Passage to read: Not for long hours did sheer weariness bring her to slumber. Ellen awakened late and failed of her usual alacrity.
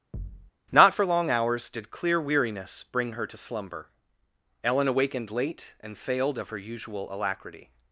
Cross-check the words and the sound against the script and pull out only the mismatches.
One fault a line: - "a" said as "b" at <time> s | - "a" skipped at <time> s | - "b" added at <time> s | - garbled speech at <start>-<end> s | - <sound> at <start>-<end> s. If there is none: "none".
- thud at 0.1-0.5 s
- "sheer" said as "clear" at 1.9 s